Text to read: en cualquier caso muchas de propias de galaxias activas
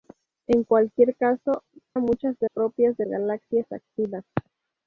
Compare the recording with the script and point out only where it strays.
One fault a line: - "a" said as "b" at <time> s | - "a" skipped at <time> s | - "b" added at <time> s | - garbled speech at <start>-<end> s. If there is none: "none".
none